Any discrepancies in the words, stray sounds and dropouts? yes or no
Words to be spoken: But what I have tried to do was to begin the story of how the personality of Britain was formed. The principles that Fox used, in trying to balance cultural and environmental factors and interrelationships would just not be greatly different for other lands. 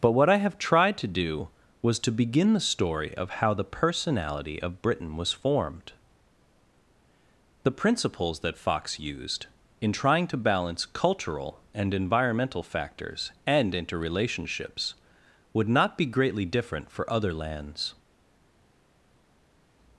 yes